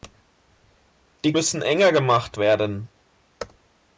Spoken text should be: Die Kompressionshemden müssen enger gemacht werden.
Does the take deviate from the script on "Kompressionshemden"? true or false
true